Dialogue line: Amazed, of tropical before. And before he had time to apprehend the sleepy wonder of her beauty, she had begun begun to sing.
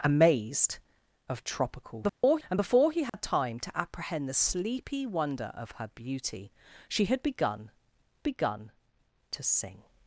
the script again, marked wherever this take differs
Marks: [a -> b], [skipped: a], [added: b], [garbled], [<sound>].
Amazed, of tropical before. [dropout] And before he had [dropout] time to apprehend the sleepy wonder of her beauty, she had begun begun to sing.